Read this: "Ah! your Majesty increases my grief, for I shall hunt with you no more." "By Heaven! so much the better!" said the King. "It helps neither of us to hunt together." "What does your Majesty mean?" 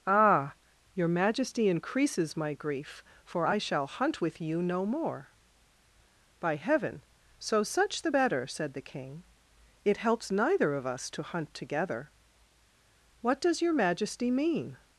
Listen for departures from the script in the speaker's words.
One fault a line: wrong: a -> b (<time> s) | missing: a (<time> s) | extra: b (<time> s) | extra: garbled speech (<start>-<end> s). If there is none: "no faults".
wrong: much -> such (7.6 s)